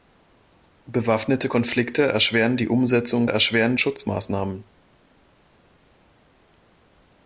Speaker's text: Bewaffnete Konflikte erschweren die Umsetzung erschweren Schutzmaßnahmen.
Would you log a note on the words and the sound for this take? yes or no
no